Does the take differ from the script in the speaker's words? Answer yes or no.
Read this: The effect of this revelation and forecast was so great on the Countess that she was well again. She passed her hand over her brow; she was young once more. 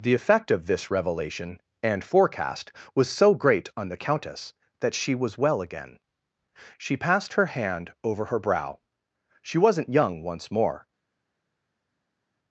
yes